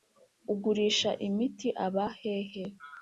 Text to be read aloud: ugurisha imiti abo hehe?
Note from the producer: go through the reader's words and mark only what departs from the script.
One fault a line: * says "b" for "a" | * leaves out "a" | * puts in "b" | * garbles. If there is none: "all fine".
* says "aba" for "abo"